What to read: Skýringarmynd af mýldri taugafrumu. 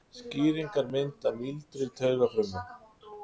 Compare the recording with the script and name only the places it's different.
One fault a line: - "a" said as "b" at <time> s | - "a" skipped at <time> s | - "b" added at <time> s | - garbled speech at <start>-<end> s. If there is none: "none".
none